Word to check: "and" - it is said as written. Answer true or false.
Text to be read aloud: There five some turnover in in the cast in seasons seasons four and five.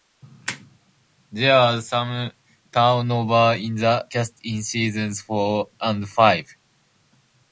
true